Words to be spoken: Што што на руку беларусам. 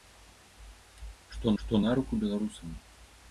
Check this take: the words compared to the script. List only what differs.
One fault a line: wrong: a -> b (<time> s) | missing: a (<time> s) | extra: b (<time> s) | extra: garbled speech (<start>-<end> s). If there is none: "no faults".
no faults